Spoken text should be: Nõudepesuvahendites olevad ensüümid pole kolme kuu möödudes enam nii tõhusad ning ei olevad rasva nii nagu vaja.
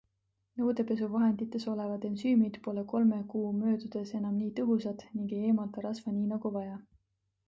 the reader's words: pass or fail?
fail